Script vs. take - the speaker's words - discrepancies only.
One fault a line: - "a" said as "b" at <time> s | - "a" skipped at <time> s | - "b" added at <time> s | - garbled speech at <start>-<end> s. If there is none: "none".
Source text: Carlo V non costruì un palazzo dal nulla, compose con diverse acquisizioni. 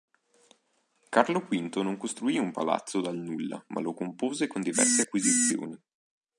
- "ma lo" added at 3.7 s